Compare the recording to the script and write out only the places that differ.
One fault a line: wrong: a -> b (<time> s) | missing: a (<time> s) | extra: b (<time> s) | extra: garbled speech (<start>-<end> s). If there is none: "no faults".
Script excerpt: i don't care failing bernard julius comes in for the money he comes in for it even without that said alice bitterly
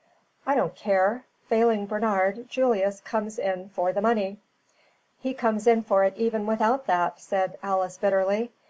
no faults